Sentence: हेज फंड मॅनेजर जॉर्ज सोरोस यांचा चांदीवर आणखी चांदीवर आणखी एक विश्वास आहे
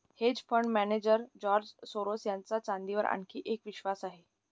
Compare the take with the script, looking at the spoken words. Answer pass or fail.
fail